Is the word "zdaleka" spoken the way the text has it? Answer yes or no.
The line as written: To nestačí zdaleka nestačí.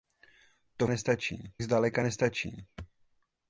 yes